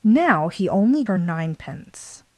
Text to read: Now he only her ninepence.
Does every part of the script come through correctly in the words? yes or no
yes